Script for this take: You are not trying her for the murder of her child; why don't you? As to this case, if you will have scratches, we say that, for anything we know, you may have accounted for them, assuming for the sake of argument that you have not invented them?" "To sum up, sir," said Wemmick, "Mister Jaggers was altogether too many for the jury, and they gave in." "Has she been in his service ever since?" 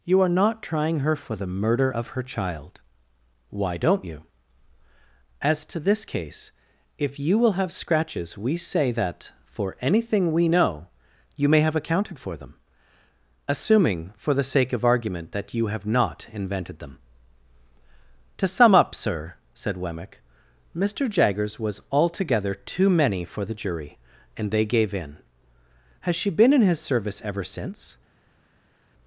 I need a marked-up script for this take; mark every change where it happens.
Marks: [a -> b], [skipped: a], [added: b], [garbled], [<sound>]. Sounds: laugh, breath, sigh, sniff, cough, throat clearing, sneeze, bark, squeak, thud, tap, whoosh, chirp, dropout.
You are not trying her for the murder of her child; why don't you? As to this case, if you will have scratches, we say that, for anything we know, you may have accounted for them, assuming for the sake of argument that you have not invented them?" "To sum up, sir," said Wemmick, "Mister Jaggers was altogether too many for the jury, and they gave in." "Has she been in his service ever since?"